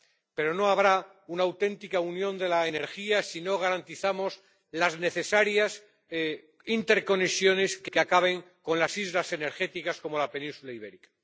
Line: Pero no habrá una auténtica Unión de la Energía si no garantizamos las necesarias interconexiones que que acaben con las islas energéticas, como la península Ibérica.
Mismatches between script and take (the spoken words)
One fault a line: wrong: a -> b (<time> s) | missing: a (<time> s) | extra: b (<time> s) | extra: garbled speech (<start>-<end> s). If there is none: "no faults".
no faults